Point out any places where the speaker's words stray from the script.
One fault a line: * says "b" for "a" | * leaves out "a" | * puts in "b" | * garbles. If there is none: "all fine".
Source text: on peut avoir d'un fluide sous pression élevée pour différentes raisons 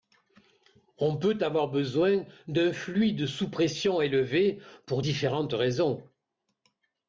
* puts in "besoin"